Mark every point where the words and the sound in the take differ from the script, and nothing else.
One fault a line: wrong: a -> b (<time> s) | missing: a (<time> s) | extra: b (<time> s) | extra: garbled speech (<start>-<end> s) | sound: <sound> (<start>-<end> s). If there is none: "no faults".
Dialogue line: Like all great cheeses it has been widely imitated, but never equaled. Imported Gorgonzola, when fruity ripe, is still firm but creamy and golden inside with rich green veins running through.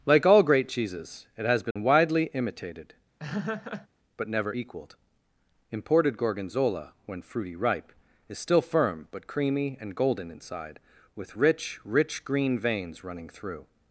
sound: dropout (1.7-1.8 s)
sound: laugh (3.2-3.9 s)
extra: rich (11.8 s)